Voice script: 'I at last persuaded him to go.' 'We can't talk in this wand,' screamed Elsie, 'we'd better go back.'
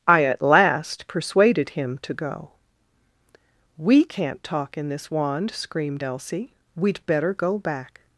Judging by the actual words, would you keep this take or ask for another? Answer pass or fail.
pass